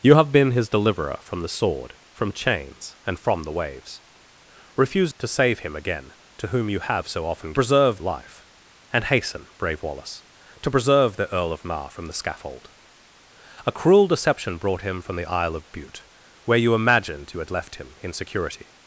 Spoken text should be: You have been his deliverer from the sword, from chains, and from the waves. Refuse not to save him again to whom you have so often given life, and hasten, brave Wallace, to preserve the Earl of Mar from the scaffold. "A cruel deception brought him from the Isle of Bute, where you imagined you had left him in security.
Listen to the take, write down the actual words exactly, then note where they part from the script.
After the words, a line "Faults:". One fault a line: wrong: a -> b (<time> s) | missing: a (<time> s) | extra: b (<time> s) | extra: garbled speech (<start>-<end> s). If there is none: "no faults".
You have been his deliverer from the sword, from chains, and from the waves. Refuse to save him again to whom you have so often preserve life, and hasten, brave Wallace, to preserve the Earl of Mar from the scaffold. "A cruel deception brought him from the Isle of Bute, where you imagined you had left him in security.
Faults:
missing: not (5.1 s)
wrong: given -> preserve (7.5 s)